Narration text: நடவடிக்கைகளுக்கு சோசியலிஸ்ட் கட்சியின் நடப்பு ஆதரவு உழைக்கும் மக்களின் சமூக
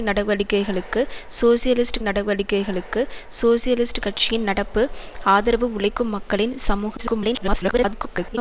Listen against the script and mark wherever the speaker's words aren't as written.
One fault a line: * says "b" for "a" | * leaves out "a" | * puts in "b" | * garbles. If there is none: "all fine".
* puts in "நடவடிக்கைகளுக்கு சோசியலிஸ்ட்"
* garbles